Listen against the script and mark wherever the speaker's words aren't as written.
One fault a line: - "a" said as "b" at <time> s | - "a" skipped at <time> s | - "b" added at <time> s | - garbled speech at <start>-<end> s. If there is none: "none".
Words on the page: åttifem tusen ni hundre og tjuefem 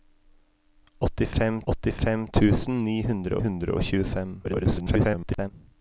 - "åttifem" added at 1.7 s
- "hundre" added at 3.5 s
- garbled speech at 4.4-5.5 s